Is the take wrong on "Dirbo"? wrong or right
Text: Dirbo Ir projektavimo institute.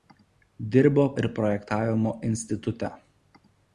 right